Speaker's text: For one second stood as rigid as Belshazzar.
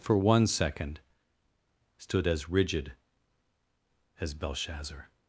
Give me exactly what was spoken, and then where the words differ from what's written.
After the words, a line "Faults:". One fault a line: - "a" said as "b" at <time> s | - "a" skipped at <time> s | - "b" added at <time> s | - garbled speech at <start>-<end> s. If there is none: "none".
For one second stood as rigid as Belshazzar.
Faults:
none